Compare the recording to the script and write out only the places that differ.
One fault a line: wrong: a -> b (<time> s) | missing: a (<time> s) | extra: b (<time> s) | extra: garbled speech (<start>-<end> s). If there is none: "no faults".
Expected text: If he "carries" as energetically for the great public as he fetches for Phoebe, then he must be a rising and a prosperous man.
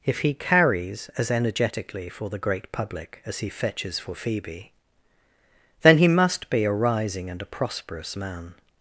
no faults